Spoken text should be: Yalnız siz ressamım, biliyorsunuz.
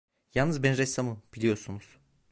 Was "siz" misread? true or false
true